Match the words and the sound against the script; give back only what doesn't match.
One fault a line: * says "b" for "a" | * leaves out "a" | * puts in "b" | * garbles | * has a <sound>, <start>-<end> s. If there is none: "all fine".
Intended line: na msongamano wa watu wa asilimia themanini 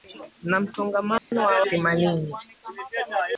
* has a dropout, 1.2-1.3 s
* leaves out "watu wa asilimia"